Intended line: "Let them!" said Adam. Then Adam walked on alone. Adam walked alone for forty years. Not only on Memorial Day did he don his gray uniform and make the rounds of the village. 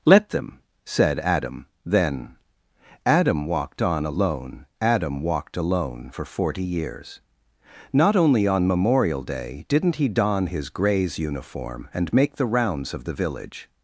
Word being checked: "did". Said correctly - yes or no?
no